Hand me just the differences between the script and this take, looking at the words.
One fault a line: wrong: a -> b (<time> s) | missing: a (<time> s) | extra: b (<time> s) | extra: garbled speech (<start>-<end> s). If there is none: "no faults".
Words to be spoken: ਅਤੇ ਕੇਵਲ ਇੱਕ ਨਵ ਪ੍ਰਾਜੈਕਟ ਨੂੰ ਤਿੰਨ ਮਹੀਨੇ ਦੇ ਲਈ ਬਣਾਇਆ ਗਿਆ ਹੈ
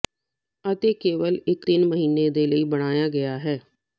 missing: ਨਵ ਪ੍ਰਾਜੈਕਟ ਨੂੰ (1.7 s)